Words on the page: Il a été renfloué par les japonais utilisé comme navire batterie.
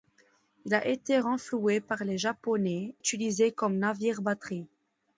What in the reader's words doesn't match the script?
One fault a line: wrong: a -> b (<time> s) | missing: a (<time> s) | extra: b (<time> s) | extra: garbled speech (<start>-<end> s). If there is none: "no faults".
no faults